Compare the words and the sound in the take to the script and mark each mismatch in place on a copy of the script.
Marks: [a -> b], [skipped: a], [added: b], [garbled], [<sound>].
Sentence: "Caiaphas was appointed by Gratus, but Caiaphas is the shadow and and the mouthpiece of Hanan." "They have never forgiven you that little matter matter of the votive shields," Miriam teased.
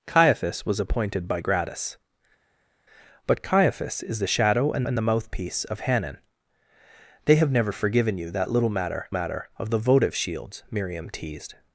"Caiaphas was appointed by Gratus, but Caiaphas is the shadow and and the mouthpiece of Hanan." "They have never forgiven you that little matter matter of the votive shields," Miriam teased.